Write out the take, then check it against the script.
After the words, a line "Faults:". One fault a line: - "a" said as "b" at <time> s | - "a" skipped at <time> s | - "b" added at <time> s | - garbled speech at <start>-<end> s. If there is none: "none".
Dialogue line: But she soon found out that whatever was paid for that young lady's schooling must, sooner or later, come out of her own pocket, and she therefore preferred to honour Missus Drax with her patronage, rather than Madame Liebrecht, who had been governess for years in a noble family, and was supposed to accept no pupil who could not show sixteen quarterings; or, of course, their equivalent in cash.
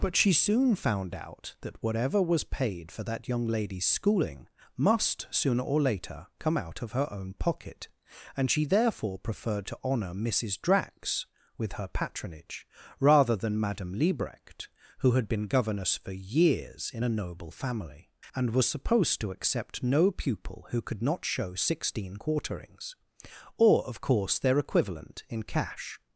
But she soon found out that whatever was paid for that young lady's schooling must, sooner or later, come out of her own pocket, and she therefore preferred to honour Missus Drax with her patronage, rather than Madame Liebrecht, who had been governess for years in a noble family, and was supposed to accept no pupil who could not show sixteen quarterings; or, of course, their equivalent in cash.
Faults:
none